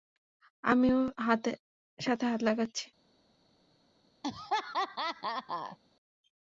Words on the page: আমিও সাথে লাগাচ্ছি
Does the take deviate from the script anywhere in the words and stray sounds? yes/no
yes